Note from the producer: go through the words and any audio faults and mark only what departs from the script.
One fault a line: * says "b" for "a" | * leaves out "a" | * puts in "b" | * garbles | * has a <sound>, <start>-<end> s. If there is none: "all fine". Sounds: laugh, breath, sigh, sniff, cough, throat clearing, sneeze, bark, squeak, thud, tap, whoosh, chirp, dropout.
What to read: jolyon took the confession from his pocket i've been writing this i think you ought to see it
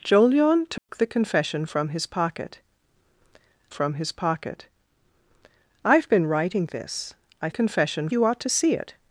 * has a dropout, 0.8-0.9 s
* puts in "from his pocket"
* says "confession" for "think"